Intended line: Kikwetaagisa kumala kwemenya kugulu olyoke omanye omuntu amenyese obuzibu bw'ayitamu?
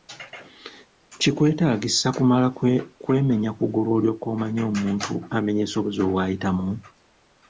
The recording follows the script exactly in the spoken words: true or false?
true